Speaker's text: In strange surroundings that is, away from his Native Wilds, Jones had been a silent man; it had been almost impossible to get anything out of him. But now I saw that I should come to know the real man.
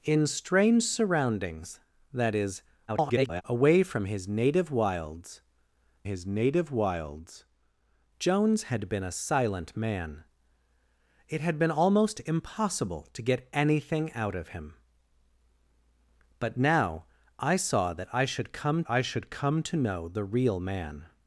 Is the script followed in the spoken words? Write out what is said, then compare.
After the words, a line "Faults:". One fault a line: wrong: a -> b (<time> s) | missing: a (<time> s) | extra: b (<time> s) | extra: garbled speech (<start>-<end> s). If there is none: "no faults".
In strange surroundings that is, [garbled] away from his Native Wilds his Native Wilds, Jones had been a silent man; it had been almost impossible to get anything out of him. But now I saw that I should come I should come to know the real man.
Faults:
extra: garbled speech (2.9-3.4 s)
extra: his Native Wilds (6.0 s)
extra: I should come (18.9 s)